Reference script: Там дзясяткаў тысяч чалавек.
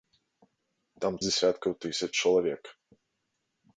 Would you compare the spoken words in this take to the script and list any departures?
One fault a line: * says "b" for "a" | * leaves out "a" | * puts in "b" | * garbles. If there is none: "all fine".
all fine